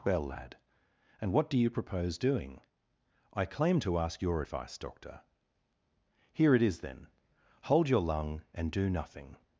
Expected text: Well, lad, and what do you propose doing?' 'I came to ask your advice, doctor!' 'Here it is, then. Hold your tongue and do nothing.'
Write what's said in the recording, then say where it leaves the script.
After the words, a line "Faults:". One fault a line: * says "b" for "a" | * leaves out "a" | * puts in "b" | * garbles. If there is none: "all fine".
Well, lad, and what do you propose doing?' 'I claim to ask your advice, doctor!' 'Here it is, then. Hold your lung and do nothing.'
Faults:
* says "claim" for "came"
* says "lung" for "tongue"